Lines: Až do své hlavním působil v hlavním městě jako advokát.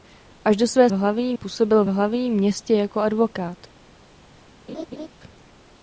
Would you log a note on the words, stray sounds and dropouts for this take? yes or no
yes